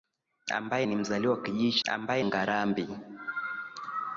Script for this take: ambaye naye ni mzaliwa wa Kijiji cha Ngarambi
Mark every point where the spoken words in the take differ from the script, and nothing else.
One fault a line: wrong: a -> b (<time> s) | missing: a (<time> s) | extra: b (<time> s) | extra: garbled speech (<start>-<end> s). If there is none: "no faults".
missing: naye (0.9 s)
wrong: cha -> ambaye (1.9 s)